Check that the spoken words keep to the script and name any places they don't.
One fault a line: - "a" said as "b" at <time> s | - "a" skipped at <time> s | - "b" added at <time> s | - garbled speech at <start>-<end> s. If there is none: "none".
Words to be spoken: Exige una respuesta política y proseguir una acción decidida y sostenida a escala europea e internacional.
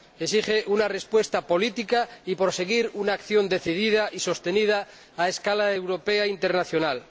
none